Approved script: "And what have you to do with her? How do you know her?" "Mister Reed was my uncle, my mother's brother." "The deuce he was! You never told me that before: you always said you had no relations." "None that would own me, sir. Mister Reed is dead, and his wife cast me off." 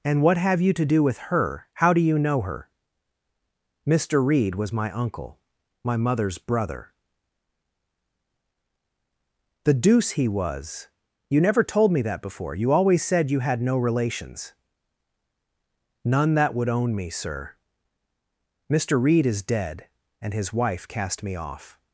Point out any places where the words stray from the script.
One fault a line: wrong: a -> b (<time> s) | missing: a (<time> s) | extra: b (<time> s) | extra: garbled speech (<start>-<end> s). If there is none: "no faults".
no faults